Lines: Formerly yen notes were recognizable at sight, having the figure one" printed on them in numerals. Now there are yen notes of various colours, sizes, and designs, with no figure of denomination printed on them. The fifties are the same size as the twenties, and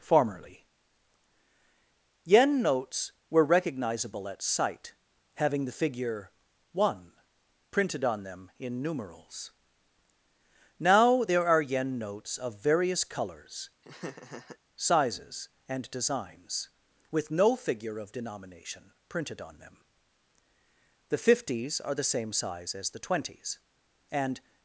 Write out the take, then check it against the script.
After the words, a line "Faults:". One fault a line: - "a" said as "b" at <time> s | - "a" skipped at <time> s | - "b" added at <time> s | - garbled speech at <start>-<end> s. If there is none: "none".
Formerly yen notes were recognizable at sight, having the figure one" printed on them in numerals. Now there are yen notes of various colours, sizes, and designs, with no figure of denomination printed on them. The fifties are the same size as the twenties, and
Faults:
none